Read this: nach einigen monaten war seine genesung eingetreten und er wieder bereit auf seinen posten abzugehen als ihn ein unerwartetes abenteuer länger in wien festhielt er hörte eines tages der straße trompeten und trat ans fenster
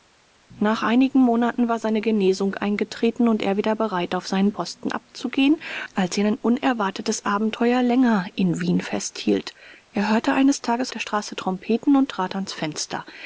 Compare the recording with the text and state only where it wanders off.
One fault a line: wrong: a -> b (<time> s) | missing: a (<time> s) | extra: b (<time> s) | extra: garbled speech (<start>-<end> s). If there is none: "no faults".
no faults